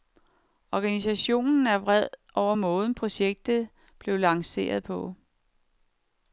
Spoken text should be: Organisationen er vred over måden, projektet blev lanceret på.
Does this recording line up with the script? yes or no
yes